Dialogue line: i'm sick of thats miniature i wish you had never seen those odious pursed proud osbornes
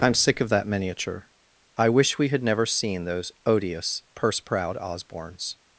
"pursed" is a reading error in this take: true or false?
true